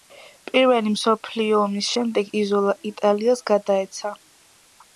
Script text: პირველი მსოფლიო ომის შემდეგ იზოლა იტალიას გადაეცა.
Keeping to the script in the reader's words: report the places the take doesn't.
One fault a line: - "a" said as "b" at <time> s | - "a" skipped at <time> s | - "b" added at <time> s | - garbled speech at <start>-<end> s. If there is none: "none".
none